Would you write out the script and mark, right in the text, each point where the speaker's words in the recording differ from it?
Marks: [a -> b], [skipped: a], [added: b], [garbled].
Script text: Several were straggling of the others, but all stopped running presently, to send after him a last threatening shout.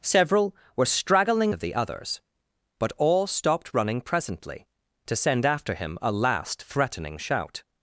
Several were straggling of the others, but all stopped running presently, to send after him a last threatening shout.